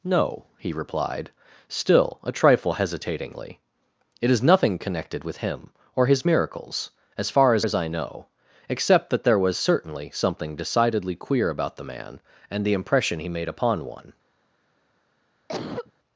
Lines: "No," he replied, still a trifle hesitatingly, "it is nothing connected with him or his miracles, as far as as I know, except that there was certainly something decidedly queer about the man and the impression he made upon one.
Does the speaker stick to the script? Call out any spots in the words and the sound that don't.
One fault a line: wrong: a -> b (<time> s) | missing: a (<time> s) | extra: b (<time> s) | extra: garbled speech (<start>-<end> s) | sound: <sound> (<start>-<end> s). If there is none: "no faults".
sound: cough (15.5-15.9 s)